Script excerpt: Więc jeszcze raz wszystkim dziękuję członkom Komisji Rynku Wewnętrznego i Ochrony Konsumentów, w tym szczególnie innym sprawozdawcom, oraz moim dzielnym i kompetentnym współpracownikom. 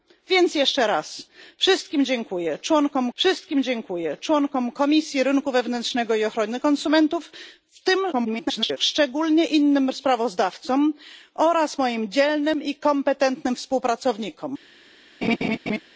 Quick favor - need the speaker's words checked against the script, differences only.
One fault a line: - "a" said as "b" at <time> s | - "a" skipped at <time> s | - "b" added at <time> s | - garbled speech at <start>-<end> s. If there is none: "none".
- "wszystkim dziękuję członkom" added at 3.1 s
- garbled speech at 8.1-8.8 s